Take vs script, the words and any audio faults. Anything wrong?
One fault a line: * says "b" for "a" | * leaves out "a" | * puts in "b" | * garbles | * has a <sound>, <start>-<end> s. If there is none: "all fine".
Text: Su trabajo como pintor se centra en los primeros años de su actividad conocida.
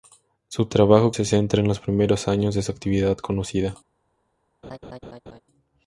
* leaves out "como pintor"
* has a laugh, 4.6-5.4 s